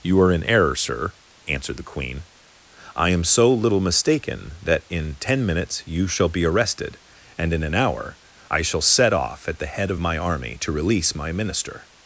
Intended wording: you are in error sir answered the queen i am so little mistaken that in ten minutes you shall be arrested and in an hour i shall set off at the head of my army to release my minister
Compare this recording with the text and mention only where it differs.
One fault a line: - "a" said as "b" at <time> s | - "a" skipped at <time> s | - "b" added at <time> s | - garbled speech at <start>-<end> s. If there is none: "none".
none